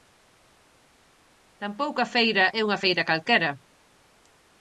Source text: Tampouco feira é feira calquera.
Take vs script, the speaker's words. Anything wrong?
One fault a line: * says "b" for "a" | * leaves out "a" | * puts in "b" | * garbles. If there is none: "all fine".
* puts in "a"
* puts in "unha"